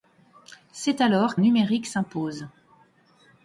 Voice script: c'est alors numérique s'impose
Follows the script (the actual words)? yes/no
yes